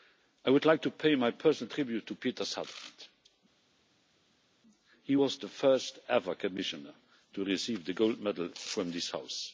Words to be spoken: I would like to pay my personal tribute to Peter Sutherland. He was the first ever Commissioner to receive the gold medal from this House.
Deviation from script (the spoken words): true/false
false